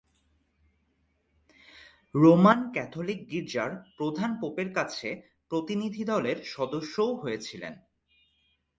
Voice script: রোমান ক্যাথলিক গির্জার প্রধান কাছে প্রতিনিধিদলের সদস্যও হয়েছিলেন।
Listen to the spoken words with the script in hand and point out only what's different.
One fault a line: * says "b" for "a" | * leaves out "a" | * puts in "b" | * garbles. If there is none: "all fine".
* puts in "পোপের"